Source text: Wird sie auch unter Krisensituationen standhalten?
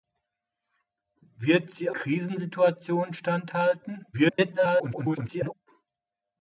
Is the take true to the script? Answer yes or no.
no